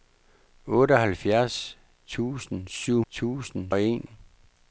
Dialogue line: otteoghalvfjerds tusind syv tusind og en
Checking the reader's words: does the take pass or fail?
pass